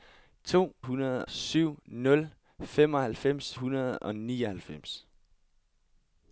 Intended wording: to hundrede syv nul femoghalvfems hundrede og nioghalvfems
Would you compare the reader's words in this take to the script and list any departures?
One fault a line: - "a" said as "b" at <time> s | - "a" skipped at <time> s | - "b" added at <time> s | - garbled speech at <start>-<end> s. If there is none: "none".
none